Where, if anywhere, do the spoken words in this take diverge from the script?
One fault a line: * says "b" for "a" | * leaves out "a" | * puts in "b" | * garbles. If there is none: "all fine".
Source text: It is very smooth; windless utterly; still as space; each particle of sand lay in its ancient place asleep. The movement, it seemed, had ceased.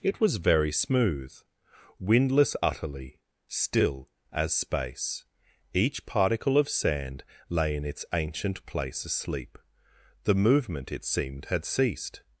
* says "was" for "is"